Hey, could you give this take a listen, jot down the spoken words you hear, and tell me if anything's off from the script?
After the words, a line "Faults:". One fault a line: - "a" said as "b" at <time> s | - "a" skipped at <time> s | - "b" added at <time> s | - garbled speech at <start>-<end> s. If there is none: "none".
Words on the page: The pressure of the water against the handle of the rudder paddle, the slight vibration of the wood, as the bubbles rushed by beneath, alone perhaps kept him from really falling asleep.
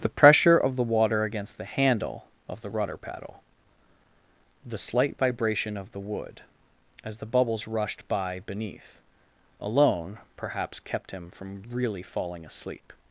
The pressure of the water against the handle of the rudder paddle, the slight vibration of the wood, as the bubbles rushed by beneath, alone perhaps kept him from really falling asleep.
Faults:
none